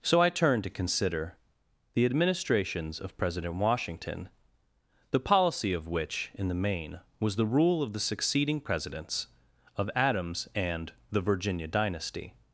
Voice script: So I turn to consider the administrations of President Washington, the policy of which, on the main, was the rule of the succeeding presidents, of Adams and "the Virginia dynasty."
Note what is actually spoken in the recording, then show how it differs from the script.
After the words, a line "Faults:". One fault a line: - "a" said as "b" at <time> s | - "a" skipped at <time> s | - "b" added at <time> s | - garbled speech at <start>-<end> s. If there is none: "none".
So I turn to consider the administrations of President Washington, the policy of which, in the main, was the rule of the succeeding presidents, of Adams and "the Virginia dynasty."
Faults:
- "on" said as "in" at 6.3 s